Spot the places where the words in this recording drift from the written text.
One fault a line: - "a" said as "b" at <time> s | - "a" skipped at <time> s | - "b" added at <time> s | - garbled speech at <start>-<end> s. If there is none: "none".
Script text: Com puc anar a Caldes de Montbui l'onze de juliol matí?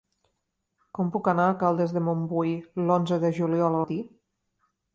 none